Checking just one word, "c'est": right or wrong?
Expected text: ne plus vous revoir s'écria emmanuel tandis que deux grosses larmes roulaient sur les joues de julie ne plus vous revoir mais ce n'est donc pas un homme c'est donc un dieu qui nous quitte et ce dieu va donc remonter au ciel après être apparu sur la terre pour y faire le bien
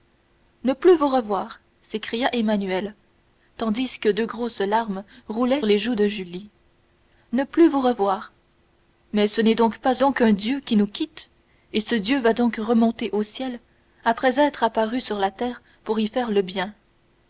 wrong